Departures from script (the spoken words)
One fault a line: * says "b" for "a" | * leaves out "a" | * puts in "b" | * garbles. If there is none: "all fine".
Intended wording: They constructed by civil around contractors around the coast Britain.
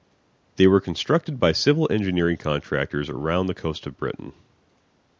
* puts in "were"
* says "engineering" for "around"
* puts in "of"